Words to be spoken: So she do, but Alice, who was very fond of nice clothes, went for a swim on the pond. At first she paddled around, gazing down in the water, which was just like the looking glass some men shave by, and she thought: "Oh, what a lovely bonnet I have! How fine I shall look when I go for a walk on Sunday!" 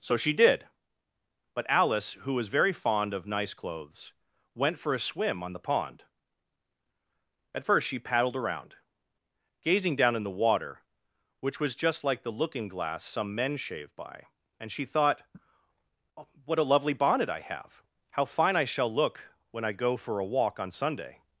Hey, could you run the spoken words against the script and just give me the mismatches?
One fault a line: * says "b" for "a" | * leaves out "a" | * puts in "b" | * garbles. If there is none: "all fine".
* says "did" for "do"